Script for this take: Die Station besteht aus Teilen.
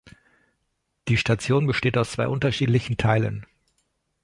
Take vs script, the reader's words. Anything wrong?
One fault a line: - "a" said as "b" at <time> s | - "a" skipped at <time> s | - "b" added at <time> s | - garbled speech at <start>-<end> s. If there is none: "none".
- "zwei unterschiedlichen" added at 2.1 s